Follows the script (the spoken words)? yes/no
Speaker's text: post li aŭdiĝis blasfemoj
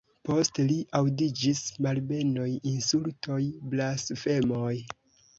no